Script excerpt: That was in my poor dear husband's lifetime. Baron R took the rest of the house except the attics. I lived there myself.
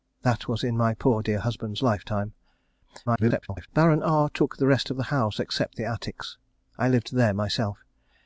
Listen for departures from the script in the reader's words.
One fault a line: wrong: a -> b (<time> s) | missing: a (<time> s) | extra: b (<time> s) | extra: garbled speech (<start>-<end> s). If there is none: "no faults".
extra: garbled speech (3.1-3.7 s)